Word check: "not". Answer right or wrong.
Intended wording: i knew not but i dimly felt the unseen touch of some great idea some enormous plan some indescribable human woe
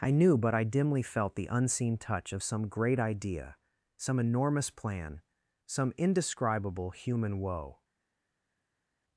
wrong